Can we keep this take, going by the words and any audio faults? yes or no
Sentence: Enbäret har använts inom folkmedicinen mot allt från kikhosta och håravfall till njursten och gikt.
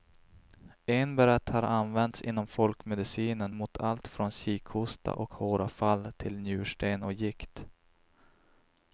yes